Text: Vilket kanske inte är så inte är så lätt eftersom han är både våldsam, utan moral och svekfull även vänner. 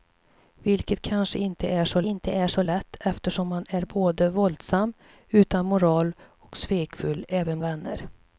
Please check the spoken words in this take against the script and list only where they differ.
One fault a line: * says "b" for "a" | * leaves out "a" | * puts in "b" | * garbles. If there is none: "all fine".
all fine